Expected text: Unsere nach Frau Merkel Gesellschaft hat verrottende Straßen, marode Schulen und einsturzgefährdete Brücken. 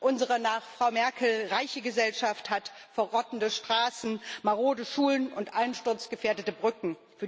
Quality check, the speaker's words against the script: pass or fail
fail